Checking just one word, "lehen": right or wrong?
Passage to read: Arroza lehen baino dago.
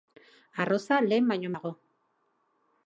right